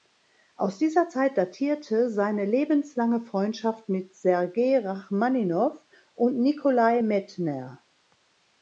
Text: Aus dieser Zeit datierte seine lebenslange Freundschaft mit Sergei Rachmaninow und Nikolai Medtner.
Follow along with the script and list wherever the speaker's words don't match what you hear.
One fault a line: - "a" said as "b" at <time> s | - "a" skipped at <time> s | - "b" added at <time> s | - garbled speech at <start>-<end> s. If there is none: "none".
none